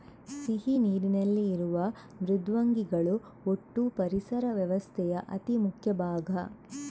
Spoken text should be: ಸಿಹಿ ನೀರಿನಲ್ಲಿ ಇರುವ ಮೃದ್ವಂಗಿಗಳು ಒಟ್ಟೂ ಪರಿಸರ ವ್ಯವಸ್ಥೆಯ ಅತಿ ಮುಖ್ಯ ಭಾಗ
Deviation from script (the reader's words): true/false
false